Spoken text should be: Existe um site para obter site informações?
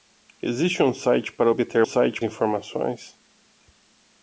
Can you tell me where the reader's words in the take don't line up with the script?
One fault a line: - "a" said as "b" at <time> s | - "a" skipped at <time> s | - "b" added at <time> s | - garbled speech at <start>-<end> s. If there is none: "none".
none